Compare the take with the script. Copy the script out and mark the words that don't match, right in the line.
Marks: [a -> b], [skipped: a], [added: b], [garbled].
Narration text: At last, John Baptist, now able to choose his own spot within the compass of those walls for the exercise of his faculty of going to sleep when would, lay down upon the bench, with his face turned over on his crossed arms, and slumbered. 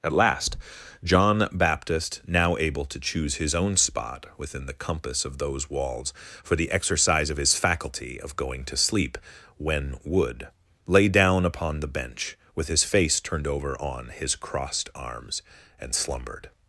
At last, John Baptist, now able to choose his own spot within the compass of those walls for the exercise of his faculty of going to sleep when would, lay down upon the bench, with his face turned over on his crossed arms, and slumbered.